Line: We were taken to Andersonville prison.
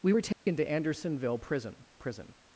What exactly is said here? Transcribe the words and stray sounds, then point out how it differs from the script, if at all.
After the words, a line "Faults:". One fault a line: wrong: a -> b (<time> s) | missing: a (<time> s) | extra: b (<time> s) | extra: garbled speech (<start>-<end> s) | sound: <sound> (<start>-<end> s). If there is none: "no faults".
We were taken to Andersonville prison prison.
Faults:
sound: dropout (0.3-0.5 s)
extra: prison (2.0 s)